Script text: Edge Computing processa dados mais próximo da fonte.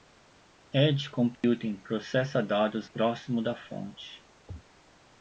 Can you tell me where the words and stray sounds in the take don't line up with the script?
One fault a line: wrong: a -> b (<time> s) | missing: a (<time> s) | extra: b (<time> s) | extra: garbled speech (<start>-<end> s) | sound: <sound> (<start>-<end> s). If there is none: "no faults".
sound: dropout (1.4-1.4 s)
missing: mais (2.9 s)